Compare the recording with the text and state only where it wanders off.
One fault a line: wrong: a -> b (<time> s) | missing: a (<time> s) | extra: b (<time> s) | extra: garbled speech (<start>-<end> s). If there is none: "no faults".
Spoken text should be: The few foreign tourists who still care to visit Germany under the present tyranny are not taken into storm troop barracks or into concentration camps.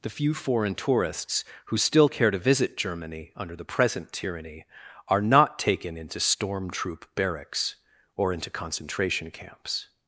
no faults